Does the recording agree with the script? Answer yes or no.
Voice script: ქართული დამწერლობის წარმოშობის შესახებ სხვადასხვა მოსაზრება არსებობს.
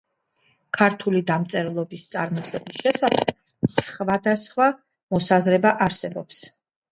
yes